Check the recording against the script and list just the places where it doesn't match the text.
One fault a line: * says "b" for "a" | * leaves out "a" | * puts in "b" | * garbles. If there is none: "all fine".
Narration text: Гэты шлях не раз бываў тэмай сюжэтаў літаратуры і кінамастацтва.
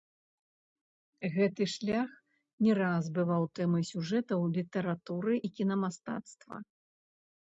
all fine